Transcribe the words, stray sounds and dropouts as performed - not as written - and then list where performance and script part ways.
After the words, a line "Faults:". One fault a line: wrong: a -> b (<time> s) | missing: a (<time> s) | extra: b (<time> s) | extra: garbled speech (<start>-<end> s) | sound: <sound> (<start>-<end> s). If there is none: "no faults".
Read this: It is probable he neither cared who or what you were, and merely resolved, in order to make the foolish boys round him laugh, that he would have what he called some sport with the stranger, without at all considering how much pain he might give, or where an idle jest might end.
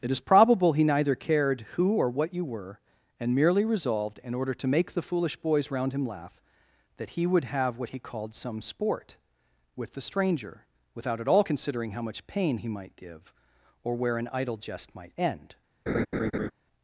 It is probable he neither cared who or what you were, and merely resolved, in order to make the foolish boys round him laugh, that he would have what he called some sport with the stranger, without at all considering how much pain he might give, or where an idle jest might end.
Faults:
sound: laugh (15.9-16.5 s)